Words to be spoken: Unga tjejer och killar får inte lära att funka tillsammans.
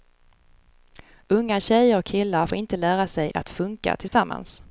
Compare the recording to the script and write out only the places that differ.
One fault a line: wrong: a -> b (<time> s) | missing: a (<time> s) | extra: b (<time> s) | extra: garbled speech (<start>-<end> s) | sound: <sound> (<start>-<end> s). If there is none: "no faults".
extra: sig (3.1 s)
sound: dropout (4.1-4.1 s)